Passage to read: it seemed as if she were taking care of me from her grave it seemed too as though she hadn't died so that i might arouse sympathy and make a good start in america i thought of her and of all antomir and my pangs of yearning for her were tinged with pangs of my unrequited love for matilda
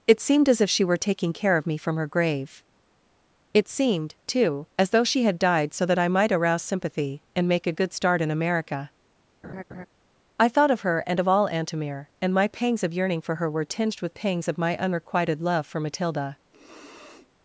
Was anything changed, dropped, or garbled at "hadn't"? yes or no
yes